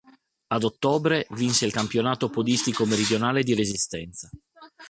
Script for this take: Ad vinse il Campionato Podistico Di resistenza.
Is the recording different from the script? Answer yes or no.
yes